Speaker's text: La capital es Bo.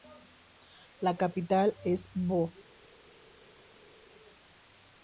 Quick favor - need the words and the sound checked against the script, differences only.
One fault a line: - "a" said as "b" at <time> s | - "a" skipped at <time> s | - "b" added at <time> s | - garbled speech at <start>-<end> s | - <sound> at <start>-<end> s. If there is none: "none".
none